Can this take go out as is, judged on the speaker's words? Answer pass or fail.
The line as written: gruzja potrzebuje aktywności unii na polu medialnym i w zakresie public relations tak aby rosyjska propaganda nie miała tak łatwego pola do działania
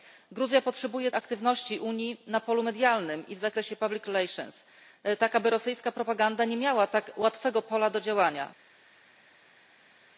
pass